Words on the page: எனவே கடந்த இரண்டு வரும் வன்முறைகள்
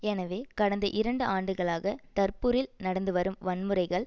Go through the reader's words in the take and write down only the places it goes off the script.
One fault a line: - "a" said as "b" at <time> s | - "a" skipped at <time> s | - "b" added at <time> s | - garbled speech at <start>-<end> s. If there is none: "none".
- "ஆண்டுகளாக டர்புரில் நடந்து" added at 1.3 s